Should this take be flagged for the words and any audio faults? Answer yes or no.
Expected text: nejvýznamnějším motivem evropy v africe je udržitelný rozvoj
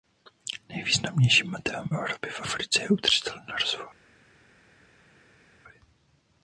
no